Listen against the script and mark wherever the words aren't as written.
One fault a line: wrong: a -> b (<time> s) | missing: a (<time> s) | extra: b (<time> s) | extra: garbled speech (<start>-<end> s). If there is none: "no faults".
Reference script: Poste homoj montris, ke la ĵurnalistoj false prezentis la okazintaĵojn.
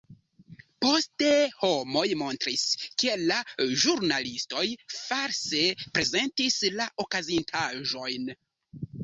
no faults